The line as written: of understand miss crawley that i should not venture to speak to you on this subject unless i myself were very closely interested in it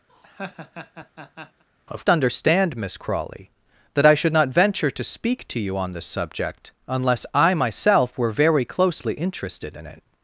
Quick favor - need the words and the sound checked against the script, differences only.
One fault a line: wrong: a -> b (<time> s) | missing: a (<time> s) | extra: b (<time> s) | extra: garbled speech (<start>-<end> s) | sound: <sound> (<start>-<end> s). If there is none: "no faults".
sound: laugh (0.1-1.6 s)